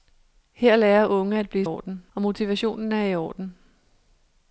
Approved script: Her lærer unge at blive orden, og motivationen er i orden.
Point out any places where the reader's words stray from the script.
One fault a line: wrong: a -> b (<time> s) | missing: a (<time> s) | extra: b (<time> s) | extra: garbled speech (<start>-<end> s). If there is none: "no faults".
no faults